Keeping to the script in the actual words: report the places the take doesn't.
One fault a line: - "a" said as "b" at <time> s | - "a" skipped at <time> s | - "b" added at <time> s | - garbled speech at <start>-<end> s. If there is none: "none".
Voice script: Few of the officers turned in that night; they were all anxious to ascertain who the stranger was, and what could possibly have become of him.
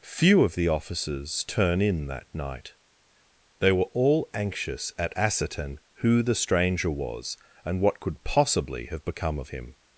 - "turned" said as "turn" at 1.4 s
- "to" said as "at" at 5.0 s